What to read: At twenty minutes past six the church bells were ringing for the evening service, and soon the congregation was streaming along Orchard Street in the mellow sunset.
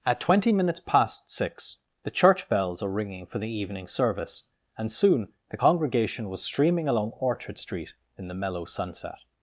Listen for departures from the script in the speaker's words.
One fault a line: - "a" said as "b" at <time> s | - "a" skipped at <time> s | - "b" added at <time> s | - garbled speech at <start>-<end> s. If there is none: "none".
- "were" said as "are" at 2.8 s